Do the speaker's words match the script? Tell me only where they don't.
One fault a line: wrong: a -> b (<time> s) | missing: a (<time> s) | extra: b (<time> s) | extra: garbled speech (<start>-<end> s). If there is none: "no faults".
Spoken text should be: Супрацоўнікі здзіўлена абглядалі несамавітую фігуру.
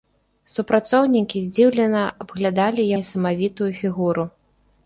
no faults